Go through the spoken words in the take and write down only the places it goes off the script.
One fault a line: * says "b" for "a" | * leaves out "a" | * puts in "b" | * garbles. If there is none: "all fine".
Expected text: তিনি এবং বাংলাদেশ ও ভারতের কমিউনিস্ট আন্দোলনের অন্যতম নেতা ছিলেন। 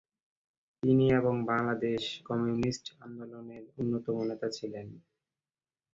* leaves out "ও ভারতের"